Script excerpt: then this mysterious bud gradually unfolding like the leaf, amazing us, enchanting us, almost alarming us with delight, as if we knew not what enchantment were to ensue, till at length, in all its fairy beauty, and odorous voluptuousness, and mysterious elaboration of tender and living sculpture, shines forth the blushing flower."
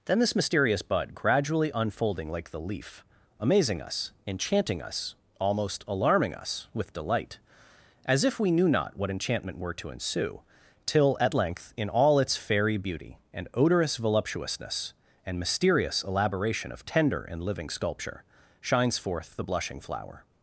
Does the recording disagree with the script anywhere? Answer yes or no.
no